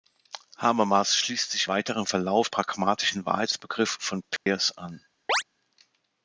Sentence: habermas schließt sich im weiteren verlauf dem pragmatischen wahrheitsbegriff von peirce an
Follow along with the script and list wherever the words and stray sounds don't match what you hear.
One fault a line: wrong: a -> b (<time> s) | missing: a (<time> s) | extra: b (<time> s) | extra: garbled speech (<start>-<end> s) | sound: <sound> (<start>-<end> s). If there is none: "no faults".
missing: im (1.7 s)
missing: dem (2.5 s)
sound: dropout (4.4-4.5 s)
sound: chirp (5.3-5.4 s)